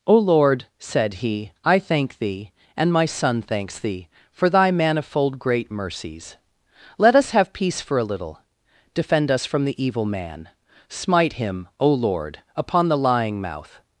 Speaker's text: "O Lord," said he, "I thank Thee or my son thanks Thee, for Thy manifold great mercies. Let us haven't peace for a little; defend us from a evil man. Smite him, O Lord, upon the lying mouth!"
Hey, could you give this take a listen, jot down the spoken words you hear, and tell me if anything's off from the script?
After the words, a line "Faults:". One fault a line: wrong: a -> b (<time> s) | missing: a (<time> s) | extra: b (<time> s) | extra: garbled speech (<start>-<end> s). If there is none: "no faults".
"O Lord," said he, "I thank Thee and my son thanks Thee, for Thy manifold great mercies. Let us have peace for a little; defend us from the evil man. Smite him, O Lord, upon the lying mouth!"
Faults:
wrong: or -> and (2.8 s)
wrong: haven't -> have (7.3 s)
wrong: a -> the (9.7 s)